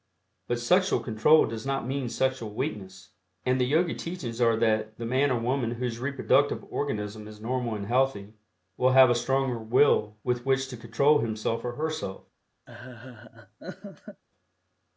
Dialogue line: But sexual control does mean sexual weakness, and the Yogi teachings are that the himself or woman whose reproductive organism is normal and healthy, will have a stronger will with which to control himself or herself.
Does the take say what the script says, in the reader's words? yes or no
no